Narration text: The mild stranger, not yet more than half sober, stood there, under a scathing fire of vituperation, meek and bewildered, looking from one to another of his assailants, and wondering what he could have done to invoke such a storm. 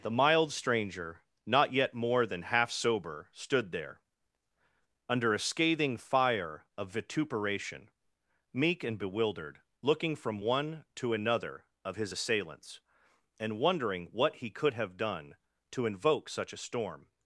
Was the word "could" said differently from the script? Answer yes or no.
no